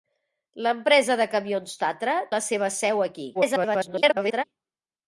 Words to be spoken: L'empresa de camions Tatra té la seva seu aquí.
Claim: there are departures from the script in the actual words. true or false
true